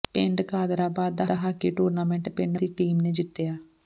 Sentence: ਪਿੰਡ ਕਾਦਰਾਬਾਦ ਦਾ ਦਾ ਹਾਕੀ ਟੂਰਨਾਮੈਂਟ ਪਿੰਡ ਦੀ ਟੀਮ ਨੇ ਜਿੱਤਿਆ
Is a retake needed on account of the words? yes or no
no